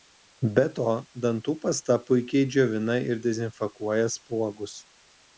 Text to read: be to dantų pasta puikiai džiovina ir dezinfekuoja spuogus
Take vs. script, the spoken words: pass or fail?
pass